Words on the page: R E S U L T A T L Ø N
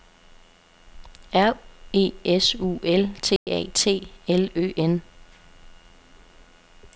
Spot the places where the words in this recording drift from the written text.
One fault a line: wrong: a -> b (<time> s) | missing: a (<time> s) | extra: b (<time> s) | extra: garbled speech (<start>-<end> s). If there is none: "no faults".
no faults